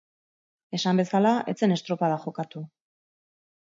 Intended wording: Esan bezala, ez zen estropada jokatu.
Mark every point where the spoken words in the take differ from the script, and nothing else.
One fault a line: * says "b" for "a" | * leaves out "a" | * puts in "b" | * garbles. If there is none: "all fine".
all fine